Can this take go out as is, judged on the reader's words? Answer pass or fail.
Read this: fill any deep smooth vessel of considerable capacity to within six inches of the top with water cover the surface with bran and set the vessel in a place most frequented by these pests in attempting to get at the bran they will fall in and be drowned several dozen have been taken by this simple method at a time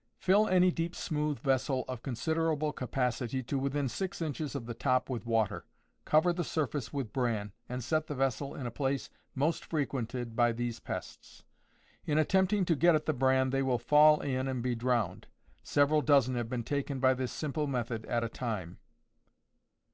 pass